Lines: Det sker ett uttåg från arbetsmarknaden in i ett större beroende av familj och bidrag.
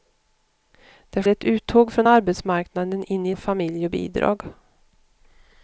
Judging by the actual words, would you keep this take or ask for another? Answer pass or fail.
fail